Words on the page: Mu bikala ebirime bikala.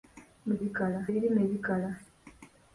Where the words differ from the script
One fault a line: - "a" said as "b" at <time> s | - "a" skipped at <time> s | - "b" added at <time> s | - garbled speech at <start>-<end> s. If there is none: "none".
none